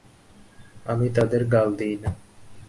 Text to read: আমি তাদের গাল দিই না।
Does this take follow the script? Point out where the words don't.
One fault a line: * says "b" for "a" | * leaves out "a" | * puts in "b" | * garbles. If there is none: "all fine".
all fine